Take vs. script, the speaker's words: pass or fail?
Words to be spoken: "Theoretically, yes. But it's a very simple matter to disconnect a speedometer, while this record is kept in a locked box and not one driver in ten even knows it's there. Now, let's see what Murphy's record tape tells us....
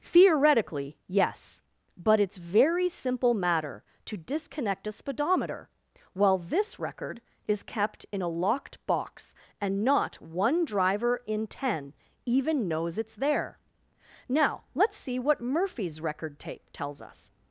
fail